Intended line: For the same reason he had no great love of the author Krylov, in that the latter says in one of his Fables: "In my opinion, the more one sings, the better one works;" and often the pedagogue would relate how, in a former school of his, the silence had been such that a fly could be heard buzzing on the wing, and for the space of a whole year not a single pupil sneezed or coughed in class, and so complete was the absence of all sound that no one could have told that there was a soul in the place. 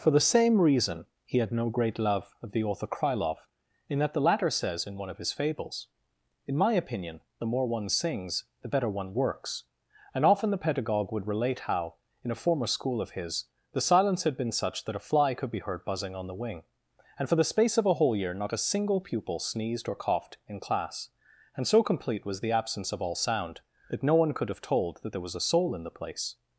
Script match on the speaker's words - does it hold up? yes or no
yes